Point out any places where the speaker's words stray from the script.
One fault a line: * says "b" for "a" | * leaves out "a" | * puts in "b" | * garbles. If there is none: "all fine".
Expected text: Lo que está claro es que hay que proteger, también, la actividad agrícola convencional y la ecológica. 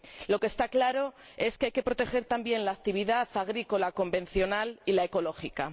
all fine